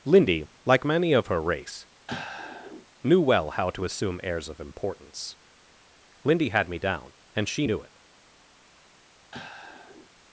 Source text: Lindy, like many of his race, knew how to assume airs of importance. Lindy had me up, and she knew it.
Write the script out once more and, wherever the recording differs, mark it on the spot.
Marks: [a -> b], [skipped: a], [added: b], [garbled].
Lindy, like many of [his -> her] race, knew [added: well] how to assume airs of importance. Lindy had me [up, -> down] and she knew it.